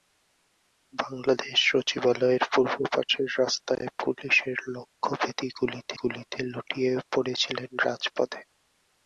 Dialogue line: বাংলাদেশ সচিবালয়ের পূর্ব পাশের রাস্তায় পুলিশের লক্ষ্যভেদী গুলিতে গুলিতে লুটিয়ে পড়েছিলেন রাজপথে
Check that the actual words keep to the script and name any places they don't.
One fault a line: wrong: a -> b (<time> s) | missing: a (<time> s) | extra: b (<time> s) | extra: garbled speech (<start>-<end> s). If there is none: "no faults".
no faults